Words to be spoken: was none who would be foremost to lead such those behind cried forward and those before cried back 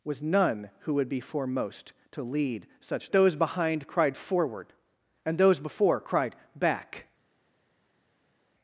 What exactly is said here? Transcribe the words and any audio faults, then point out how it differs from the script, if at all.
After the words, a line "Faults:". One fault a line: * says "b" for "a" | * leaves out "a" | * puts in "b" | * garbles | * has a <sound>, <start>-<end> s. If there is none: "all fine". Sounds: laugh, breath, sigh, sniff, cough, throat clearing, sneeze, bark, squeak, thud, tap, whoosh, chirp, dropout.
was none who would be foremost to lead such those behind cried forward and those before cried back
Faults:
all fine